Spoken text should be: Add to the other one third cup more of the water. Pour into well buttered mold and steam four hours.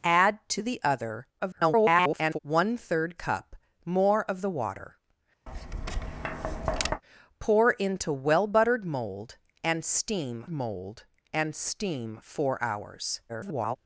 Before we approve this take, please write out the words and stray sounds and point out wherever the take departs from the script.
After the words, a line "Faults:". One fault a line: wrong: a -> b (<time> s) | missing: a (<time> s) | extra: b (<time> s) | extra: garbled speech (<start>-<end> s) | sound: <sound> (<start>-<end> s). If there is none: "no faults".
Add to the other [garbled] one third cup more of the water. Pour into well buttered mold and steam mold and steam four hours. [garbled]
Faults:
extra: garbled speech (1.4-2.4 s)
sound: tap (5.5-7.0 s)
extra: mold and steam (10.5 s)
extra: garbled speech (13.3-13.8 s)